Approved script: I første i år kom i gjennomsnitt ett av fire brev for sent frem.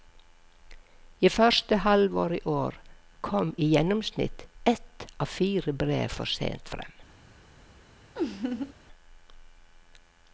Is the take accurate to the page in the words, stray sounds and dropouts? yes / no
no